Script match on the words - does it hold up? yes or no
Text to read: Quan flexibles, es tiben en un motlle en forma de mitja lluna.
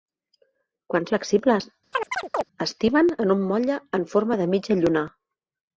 yes